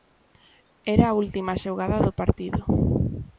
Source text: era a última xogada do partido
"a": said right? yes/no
yes